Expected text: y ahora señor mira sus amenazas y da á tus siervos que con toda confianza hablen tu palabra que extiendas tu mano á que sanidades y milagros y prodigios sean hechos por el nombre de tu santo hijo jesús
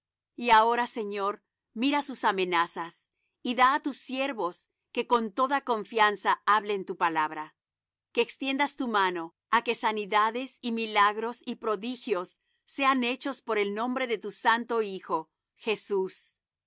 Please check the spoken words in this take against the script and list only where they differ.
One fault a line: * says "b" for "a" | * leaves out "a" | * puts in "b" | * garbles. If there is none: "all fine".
all fine